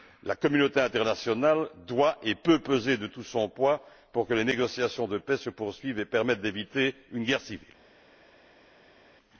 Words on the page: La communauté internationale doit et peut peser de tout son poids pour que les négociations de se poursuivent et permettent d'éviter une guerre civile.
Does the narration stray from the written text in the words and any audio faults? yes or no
yes